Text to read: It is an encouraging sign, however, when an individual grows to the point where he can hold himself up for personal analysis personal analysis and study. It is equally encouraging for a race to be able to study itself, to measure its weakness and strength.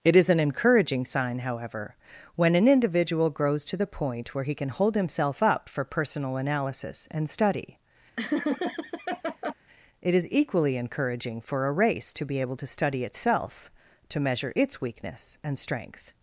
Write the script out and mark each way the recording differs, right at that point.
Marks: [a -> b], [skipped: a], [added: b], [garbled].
It is an encouraging sign, however, when an individual grows to the point where he can hold himself up for personal analysis [skipped: personal analysis] and study. It is equally encouraging for a race to be able to study itself, to measure its weakness and strength.